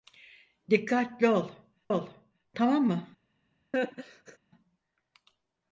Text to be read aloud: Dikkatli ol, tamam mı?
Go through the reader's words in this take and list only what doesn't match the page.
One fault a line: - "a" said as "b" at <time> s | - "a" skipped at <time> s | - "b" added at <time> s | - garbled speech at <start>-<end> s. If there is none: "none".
- "ol" added at 1.9 s